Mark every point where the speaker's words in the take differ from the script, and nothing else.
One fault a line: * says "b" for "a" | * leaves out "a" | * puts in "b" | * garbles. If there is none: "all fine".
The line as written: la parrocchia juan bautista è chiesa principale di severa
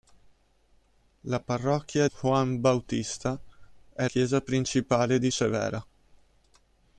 all fine